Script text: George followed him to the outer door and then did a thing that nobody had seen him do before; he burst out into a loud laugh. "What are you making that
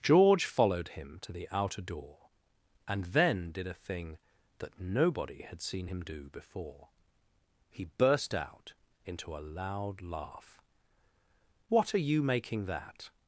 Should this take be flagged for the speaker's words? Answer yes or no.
no